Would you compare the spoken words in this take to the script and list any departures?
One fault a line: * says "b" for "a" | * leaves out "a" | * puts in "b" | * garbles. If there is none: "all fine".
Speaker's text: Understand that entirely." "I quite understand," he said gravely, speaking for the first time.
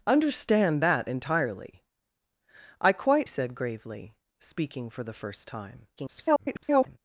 * leaves out "understand he"
* garbles